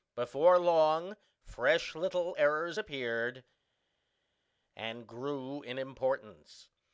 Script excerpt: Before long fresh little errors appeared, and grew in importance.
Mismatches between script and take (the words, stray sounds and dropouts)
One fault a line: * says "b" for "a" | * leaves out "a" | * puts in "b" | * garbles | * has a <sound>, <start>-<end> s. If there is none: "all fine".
all fine